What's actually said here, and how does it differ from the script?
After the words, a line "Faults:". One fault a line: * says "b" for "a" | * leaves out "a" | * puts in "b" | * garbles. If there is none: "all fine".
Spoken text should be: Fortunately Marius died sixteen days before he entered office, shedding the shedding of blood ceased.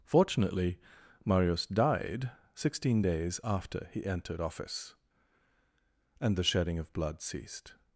Fortunately Marius died sixteen days after he entered office, and the shedding of blood ceased.
Faults:
* says "after" for "before"
* says "and" for "shedding"